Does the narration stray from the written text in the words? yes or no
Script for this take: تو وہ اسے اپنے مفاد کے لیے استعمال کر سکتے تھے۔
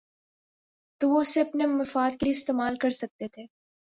no